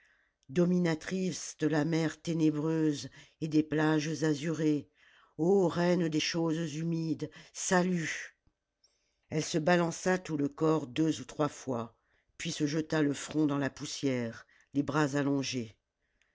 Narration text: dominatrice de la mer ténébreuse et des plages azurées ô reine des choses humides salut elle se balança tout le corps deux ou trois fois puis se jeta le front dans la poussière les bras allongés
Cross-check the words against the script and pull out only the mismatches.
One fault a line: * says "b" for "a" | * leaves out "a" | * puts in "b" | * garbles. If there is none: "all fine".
all fine